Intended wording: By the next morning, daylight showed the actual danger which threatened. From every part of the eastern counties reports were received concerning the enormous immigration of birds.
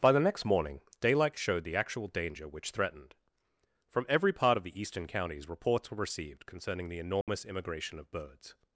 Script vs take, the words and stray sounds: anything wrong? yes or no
yes